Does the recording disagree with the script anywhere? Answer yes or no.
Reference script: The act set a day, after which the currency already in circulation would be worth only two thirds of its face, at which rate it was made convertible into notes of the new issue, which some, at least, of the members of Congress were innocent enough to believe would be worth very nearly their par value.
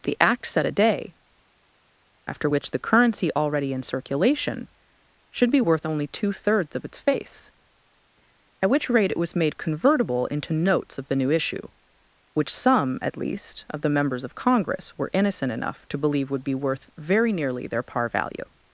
yes